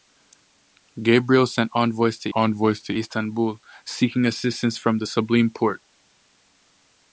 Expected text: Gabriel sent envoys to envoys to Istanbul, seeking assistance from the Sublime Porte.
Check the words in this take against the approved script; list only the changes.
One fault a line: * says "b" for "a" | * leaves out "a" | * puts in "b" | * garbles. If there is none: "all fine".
all fine